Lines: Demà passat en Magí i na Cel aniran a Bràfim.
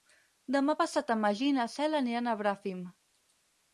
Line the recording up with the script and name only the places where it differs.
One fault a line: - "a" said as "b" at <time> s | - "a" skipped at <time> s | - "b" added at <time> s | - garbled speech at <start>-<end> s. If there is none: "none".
none